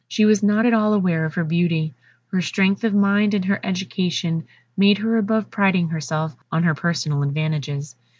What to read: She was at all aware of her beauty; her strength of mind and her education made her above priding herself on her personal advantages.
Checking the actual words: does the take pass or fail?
fail